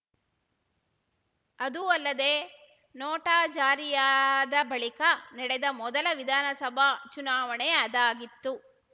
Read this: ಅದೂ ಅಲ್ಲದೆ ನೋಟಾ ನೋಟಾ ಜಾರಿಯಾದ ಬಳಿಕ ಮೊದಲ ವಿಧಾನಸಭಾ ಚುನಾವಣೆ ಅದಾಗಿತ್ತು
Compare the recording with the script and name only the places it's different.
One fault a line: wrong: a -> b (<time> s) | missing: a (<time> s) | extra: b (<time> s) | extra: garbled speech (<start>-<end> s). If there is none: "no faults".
missing: ನೋಟಾ (3.4 s)
extra: ನಡೆದ (5.3 s)